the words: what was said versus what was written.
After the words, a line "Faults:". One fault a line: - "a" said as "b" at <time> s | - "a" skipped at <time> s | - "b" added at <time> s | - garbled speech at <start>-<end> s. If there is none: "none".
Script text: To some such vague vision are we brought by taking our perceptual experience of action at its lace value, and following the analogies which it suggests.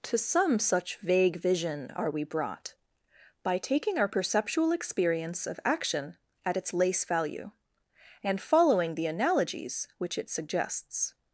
To some such vague vision are we brought by taking our perceptual experience of action at its lace value, and following the analogies which it suggests.
Faults:
none